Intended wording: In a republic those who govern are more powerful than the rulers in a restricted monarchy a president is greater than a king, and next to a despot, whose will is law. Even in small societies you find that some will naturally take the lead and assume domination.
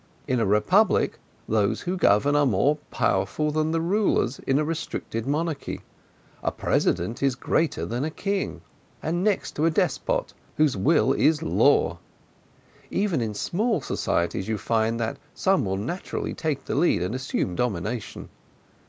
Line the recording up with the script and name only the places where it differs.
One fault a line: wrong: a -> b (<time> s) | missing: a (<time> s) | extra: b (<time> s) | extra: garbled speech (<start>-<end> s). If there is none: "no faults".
no faults